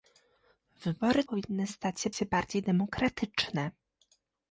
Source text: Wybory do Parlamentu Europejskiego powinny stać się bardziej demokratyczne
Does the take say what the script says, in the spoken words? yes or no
no